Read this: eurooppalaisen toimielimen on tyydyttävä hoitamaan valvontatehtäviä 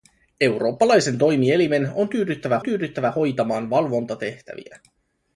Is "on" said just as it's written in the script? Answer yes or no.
yes